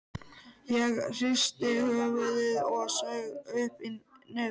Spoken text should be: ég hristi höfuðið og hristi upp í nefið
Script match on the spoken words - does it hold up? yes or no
no